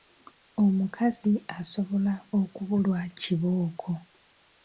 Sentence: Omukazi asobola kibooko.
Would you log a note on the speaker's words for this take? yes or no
yes